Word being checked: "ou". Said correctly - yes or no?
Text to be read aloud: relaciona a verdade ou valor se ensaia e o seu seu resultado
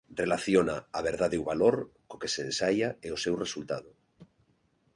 yes